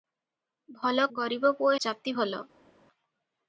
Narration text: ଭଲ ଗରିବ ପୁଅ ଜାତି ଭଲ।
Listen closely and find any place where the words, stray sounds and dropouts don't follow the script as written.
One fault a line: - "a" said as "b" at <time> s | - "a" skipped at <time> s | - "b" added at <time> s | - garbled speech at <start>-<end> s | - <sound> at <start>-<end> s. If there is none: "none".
none